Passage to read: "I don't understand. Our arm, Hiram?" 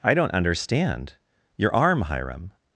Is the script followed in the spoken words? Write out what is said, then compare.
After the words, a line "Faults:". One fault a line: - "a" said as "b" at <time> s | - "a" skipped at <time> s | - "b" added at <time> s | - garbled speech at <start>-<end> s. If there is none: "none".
"I don't understand. Your arm, Hiram?"
Faults:
- "Our" said as "Your" at 1.6 s